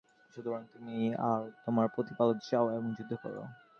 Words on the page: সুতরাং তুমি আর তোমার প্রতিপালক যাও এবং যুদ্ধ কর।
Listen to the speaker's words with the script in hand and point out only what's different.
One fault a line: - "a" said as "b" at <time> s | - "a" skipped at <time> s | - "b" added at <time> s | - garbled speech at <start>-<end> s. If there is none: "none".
none